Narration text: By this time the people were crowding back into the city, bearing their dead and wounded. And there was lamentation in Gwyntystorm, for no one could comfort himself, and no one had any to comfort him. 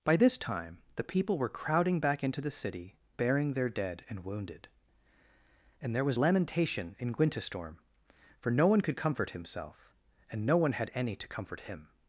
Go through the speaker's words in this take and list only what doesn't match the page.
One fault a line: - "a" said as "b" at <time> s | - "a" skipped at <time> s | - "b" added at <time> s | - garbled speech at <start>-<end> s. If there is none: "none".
none